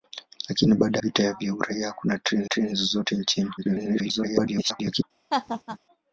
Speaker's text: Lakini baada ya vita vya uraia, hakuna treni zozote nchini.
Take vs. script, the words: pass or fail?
fail